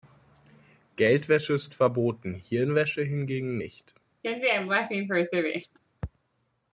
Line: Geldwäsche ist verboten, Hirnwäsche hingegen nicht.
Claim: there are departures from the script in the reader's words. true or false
false